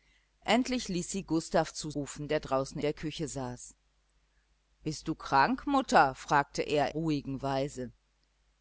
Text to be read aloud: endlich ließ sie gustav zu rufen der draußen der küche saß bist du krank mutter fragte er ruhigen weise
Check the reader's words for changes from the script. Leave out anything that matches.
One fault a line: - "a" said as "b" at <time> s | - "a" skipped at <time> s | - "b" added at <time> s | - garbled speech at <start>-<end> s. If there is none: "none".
none